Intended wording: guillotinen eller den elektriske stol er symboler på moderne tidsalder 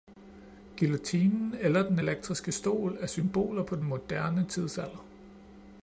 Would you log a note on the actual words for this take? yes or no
yes